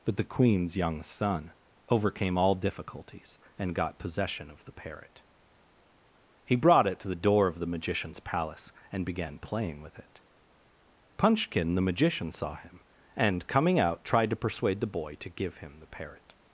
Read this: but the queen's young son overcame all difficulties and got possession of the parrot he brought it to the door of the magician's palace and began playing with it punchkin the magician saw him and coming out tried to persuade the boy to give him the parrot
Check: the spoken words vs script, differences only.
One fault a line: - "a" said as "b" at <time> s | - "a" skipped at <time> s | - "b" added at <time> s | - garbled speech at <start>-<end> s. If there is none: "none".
none